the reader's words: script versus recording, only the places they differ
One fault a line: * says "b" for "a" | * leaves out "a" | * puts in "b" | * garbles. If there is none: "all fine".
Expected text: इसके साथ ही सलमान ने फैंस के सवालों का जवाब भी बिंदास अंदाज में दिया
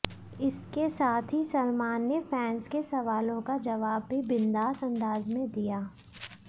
all fine